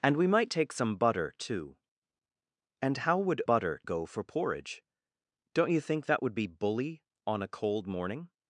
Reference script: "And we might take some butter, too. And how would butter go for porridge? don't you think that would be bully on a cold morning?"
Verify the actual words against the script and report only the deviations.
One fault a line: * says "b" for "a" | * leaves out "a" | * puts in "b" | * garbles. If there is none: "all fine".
all fine